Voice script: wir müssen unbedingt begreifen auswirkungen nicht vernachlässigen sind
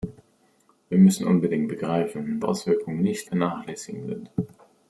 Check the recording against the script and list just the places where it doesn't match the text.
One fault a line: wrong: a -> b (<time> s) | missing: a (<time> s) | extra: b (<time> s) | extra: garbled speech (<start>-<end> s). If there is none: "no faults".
no faults